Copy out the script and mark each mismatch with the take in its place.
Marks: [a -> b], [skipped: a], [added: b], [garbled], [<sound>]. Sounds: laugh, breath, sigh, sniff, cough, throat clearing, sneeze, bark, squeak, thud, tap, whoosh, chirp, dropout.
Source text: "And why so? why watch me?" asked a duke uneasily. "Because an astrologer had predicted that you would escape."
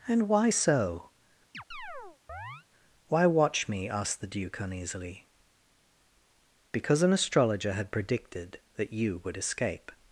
"And why so? [chirp] why watch me?" asked [a -> the] duke uneasily. "Because an astrologer had predicted that you would escape."